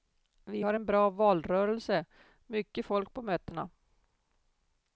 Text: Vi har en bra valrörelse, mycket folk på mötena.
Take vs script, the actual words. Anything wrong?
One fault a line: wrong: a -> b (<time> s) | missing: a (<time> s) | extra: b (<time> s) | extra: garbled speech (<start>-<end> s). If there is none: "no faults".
no faults